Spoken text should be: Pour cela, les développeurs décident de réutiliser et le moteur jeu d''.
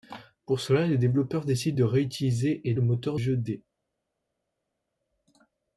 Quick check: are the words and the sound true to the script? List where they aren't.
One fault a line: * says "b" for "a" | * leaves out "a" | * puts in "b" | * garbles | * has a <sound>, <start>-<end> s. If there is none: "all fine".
all fine